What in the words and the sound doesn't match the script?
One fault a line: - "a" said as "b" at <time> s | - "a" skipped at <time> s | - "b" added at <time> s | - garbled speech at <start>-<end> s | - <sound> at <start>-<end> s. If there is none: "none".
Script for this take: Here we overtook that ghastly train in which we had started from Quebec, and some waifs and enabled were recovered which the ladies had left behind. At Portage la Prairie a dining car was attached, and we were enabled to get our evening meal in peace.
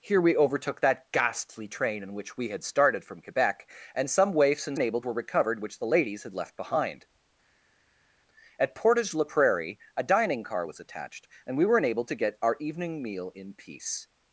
none